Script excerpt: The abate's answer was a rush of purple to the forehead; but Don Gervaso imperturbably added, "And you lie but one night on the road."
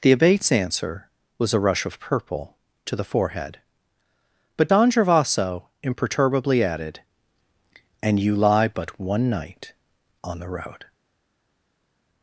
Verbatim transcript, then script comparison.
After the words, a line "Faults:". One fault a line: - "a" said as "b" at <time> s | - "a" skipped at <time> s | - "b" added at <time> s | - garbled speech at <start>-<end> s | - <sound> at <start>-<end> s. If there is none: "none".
The abate's answer was a rush of purple to the forehead; but Don Gervaso imperturbably added, "And you lie but one night on the road."
Faults:
none